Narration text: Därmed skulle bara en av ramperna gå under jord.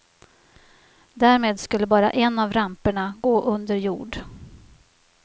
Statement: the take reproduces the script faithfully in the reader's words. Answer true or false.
true